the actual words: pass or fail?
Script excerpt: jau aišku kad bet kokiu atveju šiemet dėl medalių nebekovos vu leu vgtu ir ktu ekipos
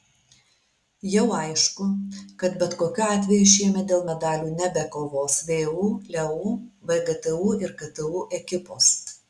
pass